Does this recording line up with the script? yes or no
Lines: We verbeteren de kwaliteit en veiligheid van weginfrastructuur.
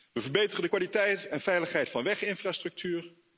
yes